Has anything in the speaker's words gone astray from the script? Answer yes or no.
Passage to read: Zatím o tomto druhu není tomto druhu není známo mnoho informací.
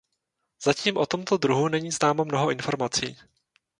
yes